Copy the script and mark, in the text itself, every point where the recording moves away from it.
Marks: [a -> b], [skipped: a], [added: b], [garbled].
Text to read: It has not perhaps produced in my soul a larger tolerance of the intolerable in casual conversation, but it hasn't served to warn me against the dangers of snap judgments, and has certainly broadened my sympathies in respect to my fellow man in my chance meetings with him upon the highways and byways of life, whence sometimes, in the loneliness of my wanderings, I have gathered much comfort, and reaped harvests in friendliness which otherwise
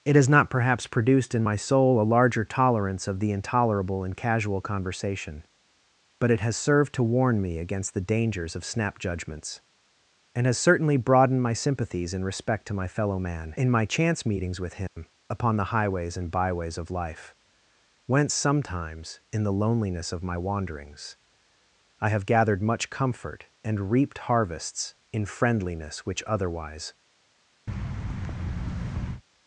It has not perhaps produced in my soul a larger tolerance of the intolerable in casual conversation, but it [hasn't -> has] served to warn me against the dangers of snap judgments, and has certainly broadened my sympathies in respect to my fellow man in my chance meetings with him upon the highways and byways of life, whence sometimes, in the loneliness of my wanderings, I have gathered much comfort, and reaped harvests in friendliness which otherwise